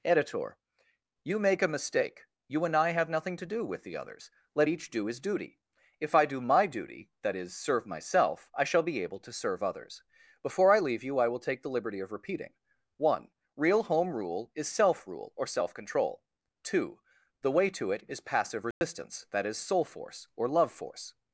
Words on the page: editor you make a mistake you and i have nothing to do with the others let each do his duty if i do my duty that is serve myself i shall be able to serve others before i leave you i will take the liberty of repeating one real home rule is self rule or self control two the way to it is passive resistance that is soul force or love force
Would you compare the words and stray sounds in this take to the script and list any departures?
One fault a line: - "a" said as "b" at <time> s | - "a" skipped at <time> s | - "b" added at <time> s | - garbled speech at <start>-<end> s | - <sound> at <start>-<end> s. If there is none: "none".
- dropout at 18.7-18.8 s